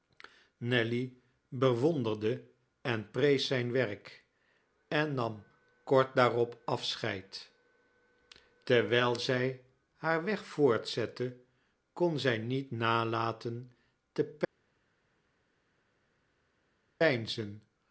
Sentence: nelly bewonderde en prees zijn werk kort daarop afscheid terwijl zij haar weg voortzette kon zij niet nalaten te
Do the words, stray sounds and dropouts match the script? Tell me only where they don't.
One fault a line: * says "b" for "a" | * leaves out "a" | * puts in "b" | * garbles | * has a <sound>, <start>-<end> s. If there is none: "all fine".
* puts in "en nam"